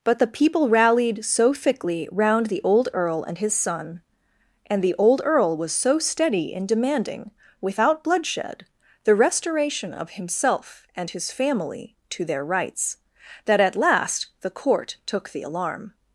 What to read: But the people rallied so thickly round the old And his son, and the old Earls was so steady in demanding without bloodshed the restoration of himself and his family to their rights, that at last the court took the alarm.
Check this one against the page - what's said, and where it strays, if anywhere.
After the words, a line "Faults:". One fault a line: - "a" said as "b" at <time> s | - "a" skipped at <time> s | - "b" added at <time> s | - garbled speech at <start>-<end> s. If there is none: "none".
But the people rallied so thickly round the old Earl and his son, and the old Earl was so steady in demanding without bloodshed the restoration of himself and his family to their rights, that at last the court took the alarm.
Faults:
- "Earl" added at 2.9 s
- "Earls" said as "Earl" at 5.2 s